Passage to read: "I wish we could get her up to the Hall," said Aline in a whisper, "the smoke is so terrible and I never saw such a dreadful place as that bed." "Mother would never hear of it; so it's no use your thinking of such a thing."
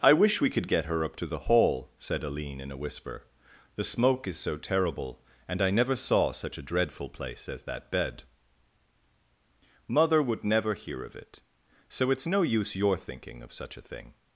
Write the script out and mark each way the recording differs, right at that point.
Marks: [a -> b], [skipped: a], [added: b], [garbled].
"I wish we could get her up to the Hall," said Aline in a whisper, "the smoke is so terrible and I never saw such a dreadful place as that bed." "Mother would never hear of it; so it's no use your thinking of such a thing."